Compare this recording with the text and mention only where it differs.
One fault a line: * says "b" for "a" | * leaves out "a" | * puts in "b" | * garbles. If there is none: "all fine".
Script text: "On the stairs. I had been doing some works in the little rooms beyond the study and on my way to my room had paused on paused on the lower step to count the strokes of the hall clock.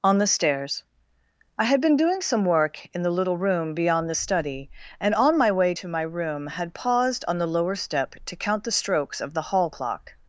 * says "work" for "works"
* says "room" for "rooms"
* leaves out "paused on"